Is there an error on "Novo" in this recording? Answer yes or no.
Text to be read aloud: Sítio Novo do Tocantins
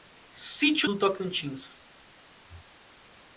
yes